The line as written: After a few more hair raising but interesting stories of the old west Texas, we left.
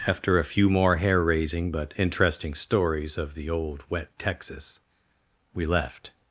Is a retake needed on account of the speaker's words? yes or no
yes